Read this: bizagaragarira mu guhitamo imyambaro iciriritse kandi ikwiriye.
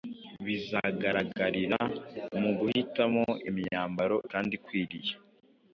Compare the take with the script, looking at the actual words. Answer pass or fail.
fail